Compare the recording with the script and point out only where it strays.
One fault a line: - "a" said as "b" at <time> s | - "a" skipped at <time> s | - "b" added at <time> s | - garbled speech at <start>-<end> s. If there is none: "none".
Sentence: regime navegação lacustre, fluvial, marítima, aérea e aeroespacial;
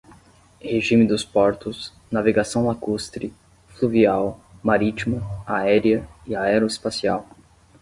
- "dos portos" added at 1.1 s